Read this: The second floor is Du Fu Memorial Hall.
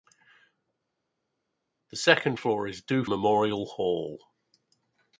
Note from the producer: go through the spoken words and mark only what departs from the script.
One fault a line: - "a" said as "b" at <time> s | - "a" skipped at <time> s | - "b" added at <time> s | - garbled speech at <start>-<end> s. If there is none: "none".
- "Fu" skipped at 3.0 s